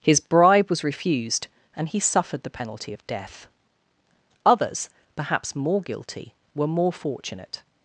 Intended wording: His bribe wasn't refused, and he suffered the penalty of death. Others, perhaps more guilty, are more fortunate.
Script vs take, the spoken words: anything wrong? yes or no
yes